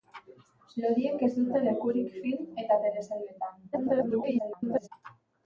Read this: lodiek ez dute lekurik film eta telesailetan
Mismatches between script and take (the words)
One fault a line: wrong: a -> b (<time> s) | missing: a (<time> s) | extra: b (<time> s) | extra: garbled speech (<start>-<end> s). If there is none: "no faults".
extra: garbled speech (3.7-4.9 s)